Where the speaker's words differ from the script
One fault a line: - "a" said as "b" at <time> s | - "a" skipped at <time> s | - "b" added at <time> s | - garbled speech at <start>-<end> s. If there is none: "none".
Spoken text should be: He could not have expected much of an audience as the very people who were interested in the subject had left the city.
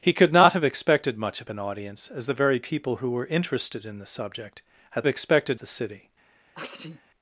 - "left" said as "expected" at 5.1 s